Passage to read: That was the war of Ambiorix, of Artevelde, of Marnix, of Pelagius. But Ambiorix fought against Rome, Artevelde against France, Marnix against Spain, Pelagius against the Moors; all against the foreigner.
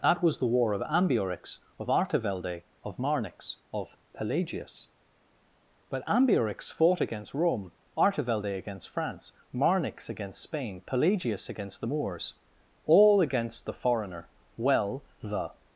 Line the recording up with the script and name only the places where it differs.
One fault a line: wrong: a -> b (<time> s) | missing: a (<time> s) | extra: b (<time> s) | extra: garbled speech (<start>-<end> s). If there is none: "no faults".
extra: Well the (14.5 s)